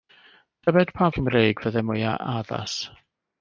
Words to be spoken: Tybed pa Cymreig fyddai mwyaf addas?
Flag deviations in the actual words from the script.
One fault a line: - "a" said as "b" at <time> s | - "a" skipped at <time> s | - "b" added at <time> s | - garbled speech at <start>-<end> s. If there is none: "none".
none